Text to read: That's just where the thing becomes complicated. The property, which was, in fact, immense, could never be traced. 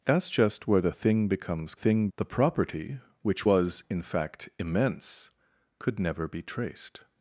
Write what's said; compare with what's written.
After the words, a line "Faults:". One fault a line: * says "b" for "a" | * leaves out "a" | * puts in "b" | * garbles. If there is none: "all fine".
That's just where the thing becomes thing. The property, which was, in fact, immense, could never be traced.
Faults:
* says "thing" for "complicated"